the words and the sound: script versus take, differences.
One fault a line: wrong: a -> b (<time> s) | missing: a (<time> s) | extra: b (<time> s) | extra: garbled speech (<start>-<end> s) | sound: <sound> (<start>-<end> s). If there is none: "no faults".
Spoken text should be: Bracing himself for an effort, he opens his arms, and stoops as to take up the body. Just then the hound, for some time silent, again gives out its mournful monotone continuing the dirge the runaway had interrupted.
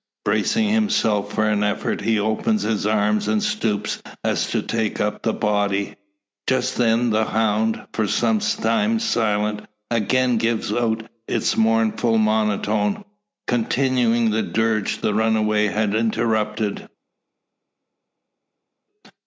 no faults